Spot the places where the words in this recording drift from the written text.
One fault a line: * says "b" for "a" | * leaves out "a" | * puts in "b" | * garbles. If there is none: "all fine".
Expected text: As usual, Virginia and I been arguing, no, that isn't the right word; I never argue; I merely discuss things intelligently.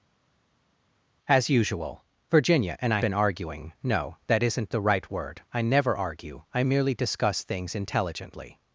all fine